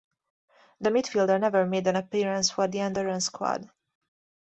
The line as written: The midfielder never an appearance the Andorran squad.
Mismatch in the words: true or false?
true